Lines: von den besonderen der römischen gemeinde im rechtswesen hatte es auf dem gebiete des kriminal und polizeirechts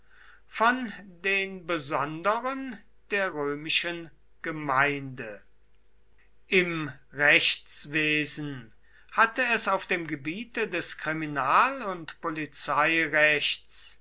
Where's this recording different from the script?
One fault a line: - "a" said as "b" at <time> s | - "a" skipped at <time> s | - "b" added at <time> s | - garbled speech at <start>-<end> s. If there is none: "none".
none